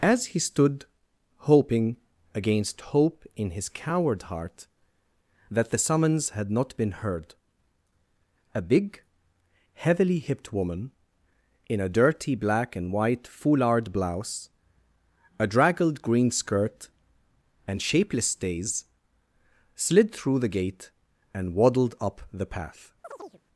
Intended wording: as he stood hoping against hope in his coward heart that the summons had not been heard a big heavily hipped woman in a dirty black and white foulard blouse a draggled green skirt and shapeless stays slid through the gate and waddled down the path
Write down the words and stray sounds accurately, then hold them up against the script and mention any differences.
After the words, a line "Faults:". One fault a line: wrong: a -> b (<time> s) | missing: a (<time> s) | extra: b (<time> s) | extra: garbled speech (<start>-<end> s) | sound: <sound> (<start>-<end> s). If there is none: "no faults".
as he stood hoping against hope in his coward heart that the summons had not been heard a big heavily hipped woman in a dirty black and white foulard blouse a draggled green skirt and shapeless stays slid through the gate and waddled up the path
Faults:
wrong: down -> up (22.0 s)
sound: chirp (23.0-23.4 s)